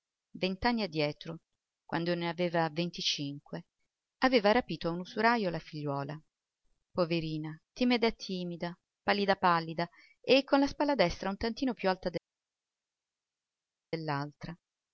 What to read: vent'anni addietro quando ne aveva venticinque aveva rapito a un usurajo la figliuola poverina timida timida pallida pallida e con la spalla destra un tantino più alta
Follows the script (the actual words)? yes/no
yes